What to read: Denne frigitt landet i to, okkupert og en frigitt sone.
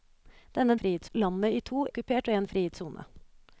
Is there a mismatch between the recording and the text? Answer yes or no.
no